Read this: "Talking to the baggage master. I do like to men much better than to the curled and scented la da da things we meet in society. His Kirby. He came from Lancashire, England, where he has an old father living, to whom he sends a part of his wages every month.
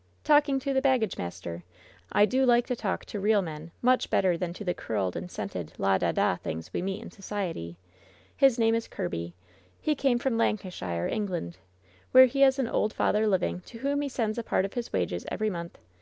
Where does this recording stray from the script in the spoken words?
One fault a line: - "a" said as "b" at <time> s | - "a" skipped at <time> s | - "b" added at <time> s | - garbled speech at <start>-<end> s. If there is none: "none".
- "talk to real" added at 2.8 s
- "name is" added at 8.6 s